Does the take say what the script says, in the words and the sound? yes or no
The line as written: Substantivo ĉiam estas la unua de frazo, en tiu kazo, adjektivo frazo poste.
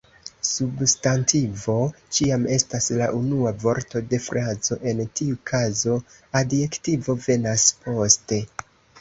no